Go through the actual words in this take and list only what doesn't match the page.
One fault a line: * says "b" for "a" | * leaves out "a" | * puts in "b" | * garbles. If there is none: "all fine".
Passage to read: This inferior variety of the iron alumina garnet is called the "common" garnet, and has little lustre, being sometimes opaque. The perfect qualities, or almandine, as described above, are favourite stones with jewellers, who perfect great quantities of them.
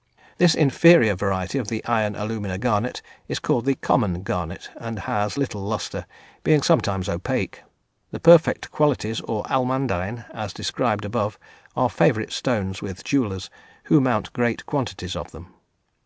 * says "mount" for "perfect"